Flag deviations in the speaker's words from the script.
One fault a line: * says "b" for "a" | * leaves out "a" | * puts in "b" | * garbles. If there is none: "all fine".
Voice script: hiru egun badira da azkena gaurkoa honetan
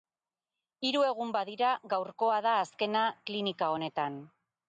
* puts in "gaurkoa"
* says "klinika" for "gaurkoa"